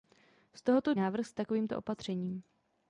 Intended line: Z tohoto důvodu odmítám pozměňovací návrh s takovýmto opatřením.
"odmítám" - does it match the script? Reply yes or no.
no